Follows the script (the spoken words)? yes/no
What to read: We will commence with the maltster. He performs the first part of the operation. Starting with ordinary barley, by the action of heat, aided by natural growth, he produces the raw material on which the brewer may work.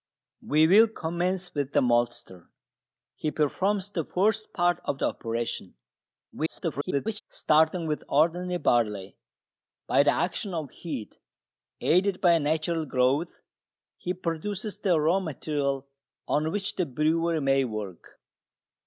no